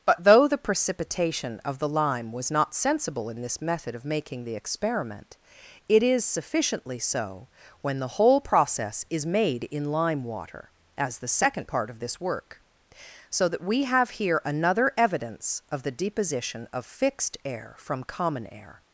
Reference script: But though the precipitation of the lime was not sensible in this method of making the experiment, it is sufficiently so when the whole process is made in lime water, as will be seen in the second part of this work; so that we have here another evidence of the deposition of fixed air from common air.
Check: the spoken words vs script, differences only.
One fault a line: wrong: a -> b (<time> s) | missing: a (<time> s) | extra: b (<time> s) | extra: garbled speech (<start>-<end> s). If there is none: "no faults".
missing: will be seen in (11.2 s)